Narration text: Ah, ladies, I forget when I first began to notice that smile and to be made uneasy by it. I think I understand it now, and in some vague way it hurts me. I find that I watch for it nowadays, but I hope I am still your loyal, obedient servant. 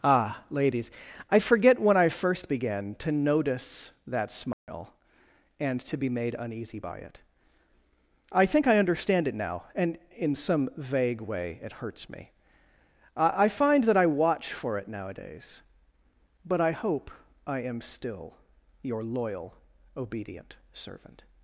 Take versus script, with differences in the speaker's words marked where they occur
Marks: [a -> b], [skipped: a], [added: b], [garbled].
Ah, ladies, I forget when I first began to notice that smile and to be made uneasy by it. I think I understand it now, and in some vague way it hurts me. I find that I watch for it nowadays, but I hope I am still your loyal, obedient servant.